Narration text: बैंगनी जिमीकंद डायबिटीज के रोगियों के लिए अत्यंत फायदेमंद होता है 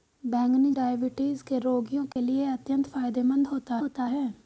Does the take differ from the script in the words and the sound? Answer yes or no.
yes